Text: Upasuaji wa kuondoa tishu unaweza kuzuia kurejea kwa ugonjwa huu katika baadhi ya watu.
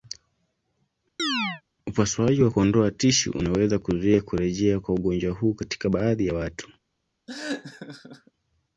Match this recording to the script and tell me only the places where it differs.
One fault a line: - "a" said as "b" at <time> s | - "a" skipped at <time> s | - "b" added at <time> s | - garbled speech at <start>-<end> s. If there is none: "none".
none